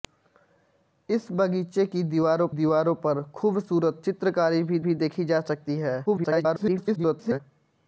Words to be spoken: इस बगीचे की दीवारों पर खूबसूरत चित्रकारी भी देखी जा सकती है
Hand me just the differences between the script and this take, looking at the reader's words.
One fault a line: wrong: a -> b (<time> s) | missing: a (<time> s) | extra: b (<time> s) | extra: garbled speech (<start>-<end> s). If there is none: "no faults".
extra: दीवारों (2.5 s)
extra: भी (4.8 s)
extra: garbled speech (6.1-7.4 s)